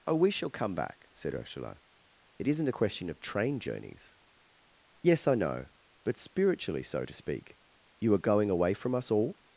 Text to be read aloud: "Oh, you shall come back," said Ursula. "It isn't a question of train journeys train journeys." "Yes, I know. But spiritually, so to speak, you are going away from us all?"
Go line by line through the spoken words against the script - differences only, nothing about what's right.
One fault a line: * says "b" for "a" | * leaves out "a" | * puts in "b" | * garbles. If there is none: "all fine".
* says "we" for "you"
* leaves out "train journeys"